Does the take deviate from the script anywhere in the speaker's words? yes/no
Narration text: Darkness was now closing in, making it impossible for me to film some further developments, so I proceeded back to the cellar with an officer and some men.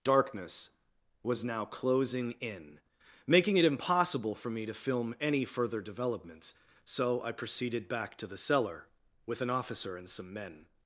yes